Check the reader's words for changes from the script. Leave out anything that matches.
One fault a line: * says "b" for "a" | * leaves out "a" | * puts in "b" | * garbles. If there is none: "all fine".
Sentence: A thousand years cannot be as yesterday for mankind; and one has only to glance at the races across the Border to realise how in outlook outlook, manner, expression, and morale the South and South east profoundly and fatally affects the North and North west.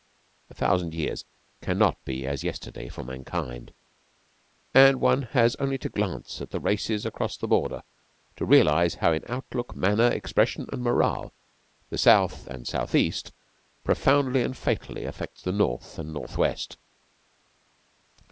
* leaves out "outlook"